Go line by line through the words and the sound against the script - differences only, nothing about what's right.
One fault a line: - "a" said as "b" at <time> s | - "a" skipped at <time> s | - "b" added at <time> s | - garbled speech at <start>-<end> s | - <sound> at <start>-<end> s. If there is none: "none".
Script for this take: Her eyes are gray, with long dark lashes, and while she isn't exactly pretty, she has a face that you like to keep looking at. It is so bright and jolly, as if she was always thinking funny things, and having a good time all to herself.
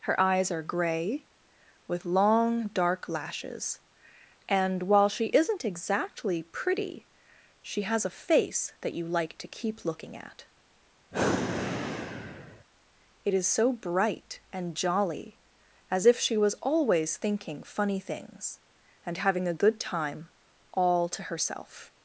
- sigh at 11.1-12.6 s